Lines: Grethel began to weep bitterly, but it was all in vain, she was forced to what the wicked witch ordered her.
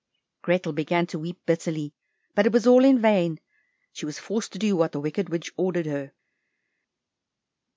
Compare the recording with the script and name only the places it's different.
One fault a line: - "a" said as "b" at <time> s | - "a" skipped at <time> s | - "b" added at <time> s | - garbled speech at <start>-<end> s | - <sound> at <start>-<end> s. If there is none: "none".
- "do" added at 4.6 s